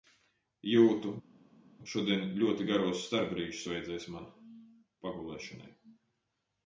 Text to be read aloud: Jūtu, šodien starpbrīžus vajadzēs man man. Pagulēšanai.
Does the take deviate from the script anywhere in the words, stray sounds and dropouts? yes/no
yes